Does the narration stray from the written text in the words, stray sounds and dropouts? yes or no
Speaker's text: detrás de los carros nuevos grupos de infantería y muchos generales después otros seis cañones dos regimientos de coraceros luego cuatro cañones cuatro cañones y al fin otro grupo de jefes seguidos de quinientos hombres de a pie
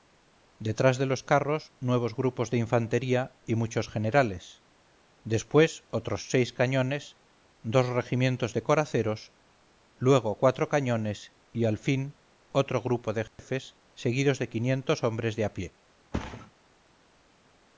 yes